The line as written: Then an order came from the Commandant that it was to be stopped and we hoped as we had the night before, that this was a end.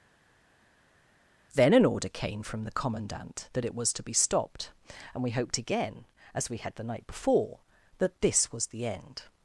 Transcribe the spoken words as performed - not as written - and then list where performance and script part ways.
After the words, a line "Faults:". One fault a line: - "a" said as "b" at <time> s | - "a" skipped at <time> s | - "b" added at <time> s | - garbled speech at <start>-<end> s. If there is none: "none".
Then an order came from the Commandant that it was to be stopped and we hoped again, as we had the night before, that this was the end.
Faults:
- "again" added at 5.6 s
- "a" said as "the" at 8.7 s